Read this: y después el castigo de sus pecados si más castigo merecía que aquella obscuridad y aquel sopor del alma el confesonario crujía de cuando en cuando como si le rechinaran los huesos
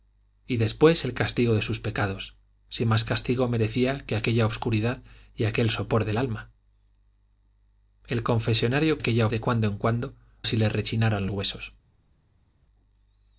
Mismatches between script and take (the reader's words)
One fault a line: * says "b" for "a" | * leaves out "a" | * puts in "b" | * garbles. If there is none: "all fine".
* says "aquella" for "crujía"
* leaves out "como"
* leaves out "los"